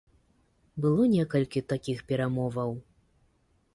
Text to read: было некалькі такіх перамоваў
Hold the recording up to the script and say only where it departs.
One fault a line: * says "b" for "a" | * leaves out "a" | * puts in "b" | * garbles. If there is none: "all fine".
all fine